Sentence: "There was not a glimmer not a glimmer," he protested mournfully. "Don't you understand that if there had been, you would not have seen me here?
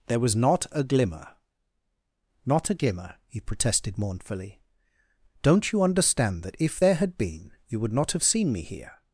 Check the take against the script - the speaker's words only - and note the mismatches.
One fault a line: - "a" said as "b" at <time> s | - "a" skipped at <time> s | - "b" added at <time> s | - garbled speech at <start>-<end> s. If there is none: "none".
none